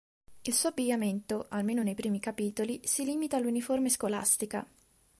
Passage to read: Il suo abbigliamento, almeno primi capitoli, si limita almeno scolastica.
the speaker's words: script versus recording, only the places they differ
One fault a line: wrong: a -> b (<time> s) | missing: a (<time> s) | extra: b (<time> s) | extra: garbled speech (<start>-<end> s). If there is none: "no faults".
extra: nei (1.8 s)
wrong: almeno -> all'uniforme (3.4 s)